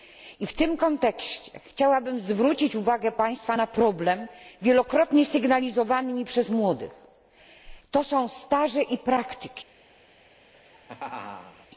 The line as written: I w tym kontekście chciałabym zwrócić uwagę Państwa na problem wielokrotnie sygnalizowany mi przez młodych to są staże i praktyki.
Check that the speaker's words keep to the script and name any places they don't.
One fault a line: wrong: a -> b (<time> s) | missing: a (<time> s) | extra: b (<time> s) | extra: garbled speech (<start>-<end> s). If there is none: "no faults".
no faults